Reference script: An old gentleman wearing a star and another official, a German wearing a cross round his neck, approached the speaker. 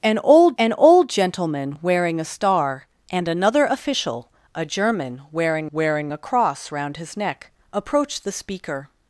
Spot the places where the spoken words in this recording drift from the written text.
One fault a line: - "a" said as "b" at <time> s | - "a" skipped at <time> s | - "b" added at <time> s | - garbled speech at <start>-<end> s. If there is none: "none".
- "an old" added at 0.6 s
- "wearing" added at 5.7 s